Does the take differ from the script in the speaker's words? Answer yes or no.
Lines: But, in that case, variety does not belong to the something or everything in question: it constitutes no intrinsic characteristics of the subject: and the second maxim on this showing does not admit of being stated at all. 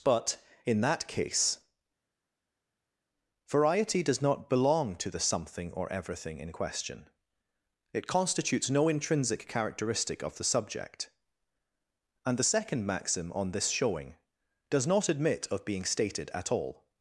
yes